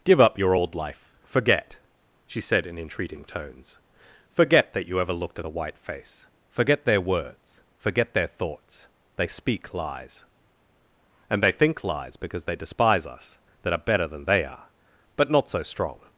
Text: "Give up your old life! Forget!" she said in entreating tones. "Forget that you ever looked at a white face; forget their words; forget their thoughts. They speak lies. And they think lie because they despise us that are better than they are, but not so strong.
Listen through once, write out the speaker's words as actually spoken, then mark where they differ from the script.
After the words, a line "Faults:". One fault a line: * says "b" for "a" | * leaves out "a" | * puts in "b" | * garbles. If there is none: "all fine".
"Give up your old life! Forget!" she said in entreating tones. "Forget that you ever looked at a white face; forget their words; forget their thoughts. They speak lies. And they think lies because they despise us that are better than they are, but not so strong.
Faults:
* says "lies" for "lie"